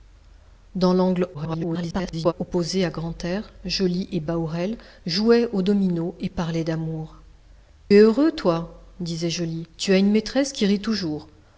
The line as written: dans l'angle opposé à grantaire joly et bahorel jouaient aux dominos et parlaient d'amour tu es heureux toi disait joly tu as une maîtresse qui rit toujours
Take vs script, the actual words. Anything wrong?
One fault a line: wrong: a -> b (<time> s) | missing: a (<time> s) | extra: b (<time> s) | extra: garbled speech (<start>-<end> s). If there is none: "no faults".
extra: garbled speech (1.3-2.3 s)
missing: tu (7.1 s)